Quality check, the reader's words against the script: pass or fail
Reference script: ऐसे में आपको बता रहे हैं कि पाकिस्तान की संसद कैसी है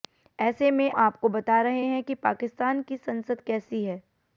pass